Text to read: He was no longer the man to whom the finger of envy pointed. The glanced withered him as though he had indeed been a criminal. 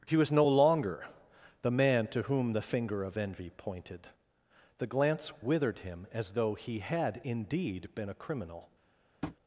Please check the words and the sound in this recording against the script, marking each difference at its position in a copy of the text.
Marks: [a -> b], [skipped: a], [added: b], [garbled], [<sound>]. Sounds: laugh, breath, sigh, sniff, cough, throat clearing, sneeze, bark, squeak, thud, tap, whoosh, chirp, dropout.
He was no longer the man to whom the finger of envy pointed. The [glanced -> glance] withered him as though he had indeed been a criminal. [tap]